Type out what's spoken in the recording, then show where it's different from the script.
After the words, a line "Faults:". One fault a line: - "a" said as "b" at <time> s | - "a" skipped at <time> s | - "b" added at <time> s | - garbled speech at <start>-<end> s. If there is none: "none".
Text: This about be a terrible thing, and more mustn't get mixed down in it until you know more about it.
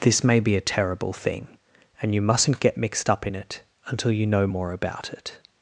This may be a terrible thing, and you mustn't get mixed up in it until you know more about it.
Faults:
- "about" said as "may" at 0.2 s
- "more" said as "you" at 2.1 s
- "down" said as "up" at 3.1 s